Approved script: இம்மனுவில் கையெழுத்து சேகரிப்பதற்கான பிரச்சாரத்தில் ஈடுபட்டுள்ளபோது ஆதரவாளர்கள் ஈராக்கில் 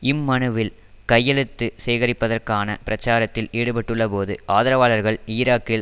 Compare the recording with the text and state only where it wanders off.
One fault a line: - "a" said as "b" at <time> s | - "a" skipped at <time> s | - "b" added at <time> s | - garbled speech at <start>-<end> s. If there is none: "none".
none